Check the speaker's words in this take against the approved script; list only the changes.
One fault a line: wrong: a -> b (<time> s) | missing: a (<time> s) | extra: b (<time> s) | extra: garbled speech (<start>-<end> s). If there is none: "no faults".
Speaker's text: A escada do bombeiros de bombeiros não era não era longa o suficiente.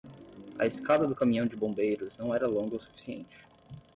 wrong: bombeiros -> caminhão (1.1 s)
missing: não era (2.5 s)